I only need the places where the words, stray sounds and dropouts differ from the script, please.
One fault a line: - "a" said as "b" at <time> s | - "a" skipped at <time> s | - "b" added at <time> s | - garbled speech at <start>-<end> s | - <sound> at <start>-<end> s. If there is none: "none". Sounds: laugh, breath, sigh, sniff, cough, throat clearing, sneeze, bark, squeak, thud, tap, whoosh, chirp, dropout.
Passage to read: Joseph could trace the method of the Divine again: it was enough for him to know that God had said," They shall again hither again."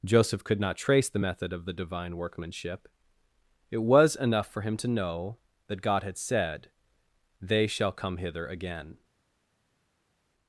- "not" added at 0.6 s
- "again" said as "workmanship" at 2.1 s
- "again" said as "come" at 7.9 s